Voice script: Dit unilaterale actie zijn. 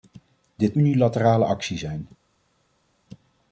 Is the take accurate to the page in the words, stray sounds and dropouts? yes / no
yes